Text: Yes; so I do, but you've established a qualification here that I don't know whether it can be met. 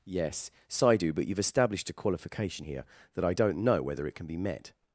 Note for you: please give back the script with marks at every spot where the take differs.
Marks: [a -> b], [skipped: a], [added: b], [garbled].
Yes; so I do, but you've established a qualification here that I don't know whether it can be met.